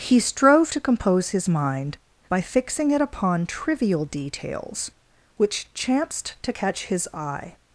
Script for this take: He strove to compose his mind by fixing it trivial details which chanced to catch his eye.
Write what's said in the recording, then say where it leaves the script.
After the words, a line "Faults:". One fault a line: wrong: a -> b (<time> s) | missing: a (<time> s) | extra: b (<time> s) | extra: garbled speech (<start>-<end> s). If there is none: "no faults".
He strove to compose his mind by fixing it upon trivial details which chanced to catch his eye.
Faults:
extra: upon (3.0 s)